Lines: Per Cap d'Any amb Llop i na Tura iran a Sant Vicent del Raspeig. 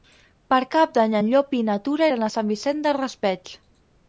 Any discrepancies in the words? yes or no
yes